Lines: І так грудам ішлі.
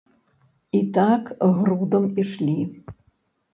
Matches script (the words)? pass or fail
pass